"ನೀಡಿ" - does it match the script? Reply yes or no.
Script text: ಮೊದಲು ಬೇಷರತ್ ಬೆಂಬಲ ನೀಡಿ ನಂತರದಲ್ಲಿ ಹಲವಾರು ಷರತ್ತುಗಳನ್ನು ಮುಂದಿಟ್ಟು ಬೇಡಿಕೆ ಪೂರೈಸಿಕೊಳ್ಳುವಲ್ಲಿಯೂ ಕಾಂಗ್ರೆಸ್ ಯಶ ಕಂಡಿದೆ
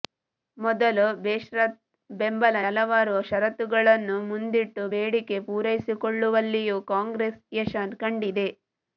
no